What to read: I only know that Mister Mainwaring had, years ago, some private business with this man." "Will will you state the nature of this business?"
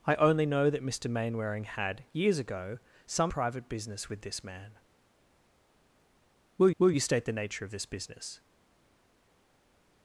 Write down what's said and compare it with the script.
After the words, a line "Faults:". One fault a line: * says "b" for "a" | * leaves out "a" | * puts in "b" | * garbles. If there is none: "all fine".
I only know that Mister Mainwaring had, years ago, some private business with this man." "Will will you state the nature of this business?"
Faults:
all fine